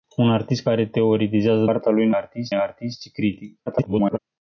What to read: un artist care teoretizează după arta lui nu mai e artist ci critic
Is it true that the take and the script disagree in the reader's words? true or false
true